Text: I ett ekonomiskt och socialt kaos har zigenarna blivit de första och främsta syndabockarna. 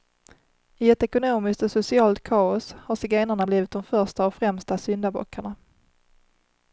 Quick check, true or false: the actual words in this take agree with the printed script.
true